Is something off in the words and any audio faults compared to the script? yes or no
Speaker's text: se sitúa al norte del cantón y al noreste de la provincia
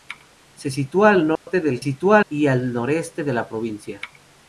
yes